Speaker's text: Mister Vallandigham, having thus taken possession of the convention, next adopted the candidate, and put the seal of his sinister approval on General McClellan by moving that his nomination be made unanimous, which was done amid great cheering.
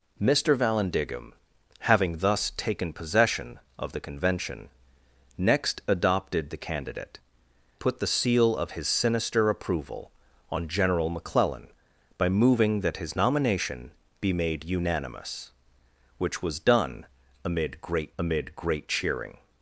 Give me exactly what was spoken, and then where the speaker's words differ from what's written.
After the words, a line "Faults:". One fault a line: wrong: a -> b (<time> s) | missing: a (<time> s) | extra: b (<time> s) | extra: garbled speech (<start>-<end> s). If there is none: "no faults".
Mister Vallandigham, having thus taken possession of the convention, next adopted the candidate, put the seal of his sinister approval on General McClellan by moving that his nomination be made unanimous, which was done amid great amid great cheering.
Faults:
missing: and (7.2 s)
extra: amid great (18.2 s)